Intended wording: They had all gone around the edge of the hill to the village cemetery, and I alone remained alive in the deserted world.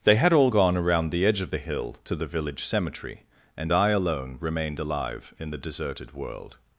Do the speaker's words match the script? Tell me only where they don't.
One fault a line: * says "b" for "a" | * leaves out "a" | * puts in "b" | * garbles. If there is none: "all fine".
all fine